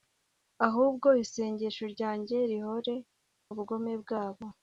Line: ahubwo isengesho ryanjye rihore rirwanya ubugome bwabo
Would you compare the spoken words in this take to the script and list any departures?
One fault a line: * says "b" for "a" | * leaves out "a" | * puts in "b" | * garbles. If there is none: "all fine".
* leaves out "rirwanya"